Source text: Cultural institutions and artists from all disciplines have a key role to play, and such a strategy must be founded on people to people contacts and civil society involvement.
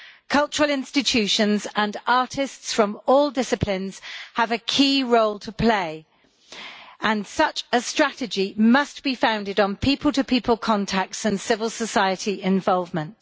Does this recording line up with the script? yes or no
yes